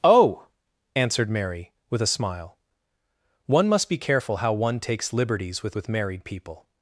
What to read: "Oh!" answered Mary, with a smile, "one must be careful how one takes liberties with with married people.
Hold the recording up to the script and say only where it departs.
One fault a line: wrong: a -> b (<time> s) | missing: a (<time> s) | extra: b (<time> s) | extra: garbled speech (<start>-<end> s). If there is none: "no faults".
no faults